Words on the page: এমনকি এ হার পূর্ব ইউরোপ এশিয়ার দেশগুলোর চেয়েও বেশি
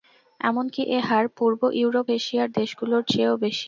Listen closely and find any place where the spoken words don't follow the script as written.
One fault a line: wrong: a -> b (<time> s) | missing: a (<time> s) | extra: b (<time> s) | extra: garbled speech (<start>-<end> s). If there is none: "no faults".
no faults